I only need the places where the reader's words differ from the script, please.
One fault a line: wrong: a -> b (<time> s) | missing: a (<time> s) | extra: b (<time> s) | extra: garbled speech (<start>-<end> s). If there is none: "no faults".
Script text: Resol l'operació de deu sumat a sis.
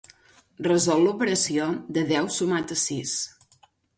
no faults